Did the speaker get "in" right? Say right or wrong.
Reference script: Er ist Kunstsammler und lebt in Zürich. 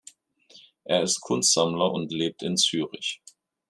right